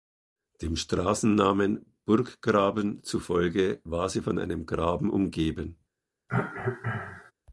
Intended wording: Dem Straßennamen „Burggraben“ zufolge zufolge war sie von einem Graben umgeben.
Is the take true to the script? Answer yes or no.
no